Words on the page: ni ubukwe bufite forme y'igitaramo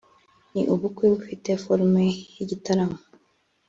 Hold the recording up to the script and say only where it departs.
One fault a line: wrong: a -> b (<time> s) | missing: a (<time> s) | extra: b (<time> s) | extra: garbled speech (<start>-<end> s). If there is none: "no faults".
no faults